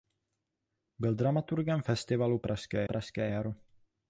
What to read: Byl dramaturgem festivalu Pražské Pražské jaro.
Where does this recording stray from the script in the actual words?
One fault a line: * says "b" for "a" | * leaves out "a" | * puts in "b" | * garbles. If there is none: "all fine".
all fine